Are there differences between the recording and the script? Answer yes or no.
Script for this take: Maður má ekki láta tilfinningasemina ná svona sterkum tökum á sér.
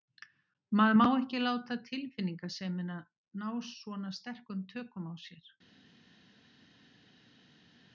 no